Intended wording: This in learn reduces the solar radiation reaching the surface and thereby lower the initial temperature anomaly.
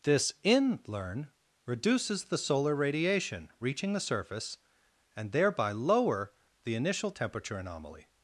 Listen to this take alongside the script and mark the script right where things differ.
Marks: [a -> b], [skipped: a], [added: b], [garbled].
This in learn reduces the solar radiation reaching the surface and thereby lower the initial temperature anomaly.